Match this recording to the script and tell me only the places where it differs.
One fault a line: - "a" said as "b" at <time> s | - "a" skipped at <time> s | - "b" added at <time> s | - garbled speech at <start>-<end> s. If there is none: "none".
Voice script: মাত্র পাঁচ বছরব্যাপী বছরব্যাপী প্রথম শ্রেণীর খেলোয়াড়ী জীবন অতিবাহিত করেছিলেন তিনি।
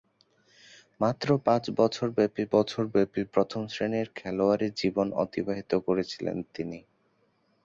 none